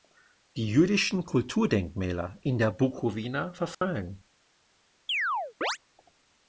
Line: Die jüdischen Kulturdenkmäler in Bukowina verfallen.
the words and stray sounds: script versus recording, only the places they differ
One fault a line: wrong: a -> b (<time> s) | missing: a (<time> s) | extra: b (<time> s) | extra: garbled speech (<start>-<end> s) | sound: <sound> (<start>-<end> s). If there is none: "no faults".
extra: der (2.6 s)
sound: dropout (3.7-3.8 s)
sound: chirp (5.1-5.8 s)